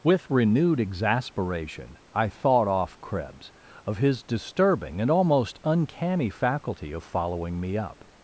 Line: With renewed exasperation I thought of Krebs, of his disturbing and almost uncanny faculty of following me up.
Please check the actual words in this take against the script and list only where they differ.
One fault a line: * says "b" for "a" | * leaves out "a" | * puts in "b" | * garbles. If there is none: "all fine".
* says "off" for "of"